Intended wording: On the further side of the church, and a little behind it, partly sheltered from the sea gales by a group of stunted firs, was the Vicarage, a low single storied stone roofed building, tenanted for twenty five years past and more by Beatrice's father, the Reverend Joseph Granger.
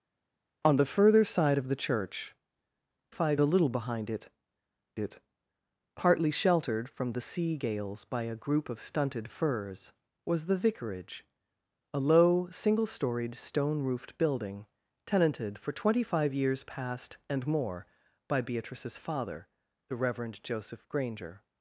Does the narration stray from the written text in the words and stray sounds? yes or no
yes